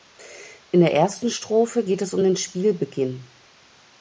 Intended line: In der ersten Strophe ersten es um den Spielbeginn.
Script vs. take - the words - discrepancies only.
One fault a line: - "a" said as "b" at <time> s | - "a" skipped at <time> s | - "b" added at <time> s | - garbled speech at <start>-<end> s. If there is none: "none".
- "ersten" said as "geht" at 1.8 s